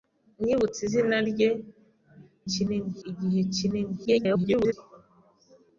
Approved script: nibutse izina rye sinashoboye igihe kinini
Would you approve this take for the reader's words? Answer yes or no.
no